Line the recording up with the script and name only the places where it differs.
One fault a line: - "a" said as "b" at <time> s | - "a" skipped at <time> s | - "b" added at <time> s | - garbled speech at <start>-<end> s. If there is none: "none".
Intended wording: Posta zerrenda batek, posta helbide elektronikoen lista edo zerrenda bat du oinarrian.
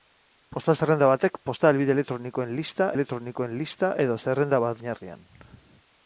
- "elektronikoen lista" added at 3.0 s
- "du" skipped at 4.8 s